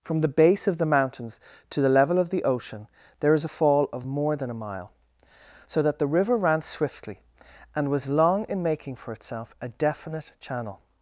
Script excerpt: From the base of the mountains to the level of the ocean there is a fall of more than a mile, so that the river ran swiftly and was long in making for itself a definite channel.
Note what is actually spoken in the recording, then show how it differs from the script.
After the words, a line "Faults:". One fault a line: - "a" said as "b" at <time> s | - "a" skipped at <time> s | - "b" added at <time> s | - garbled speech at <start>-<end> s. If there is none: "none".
From the base of the mountains to the level of the ocean there is a fall of more than a mile, so that the river ran swiftly and was long in making for itself a definite channel.
Faults:
none